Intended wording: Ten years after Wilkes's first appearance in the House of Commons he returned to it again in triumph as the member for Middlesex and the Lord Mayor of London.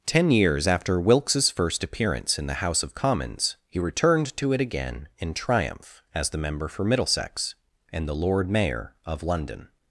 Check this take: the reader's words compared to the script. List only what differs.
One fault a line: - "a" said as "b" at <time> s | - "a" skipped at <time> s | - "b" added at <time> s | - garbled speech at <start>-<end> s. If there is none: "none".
none